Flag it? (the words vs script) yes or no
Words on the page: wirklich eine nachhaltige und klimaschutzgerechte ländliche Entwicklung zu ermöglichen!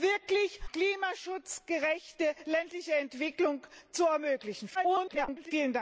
yes